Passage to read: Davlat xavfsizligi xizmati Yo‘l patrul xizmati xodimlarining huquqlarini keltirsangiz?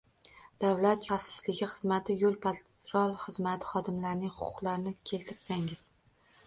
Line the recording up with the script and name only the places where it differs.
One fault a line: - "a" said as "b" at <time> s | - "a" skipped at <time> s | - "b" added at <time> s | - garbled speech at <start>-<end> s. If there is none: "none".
none